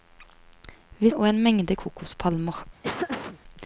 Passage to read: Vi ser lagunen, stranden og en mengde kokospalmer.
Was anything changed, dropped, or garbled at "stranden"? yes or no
yes